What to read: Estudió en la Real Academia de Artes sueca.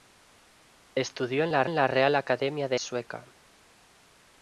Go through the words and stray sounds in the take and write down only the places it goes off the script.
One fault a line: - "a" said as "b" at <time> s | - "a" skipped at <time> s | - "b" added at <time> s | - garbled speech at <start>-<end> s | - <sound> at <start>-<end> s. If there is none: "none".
- "en la" added at 1.6 s
- "Artes" skipped at 2.8 s